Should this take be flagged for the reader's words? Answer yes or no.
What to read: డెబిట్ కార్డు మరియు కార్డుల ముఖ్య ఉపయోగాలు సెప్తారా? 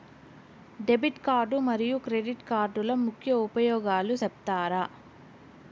yes